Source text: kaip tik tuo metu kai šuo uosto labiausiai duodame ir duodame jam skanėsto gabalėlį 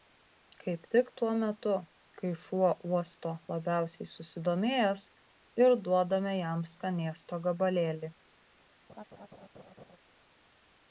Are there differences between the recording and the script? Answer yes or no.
yes